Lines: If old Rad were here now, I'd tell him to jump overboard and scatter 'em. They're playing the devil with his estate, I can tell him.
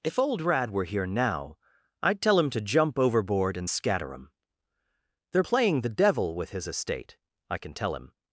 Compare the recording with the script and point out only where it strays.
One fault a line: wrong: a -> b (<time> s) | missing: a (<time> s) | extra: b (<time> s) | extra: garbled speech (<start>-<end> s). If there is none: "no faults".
no faults